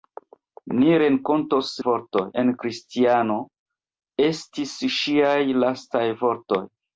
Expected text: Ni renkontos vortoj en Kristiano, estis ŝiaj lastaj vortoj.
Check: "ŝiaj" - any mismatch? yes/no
no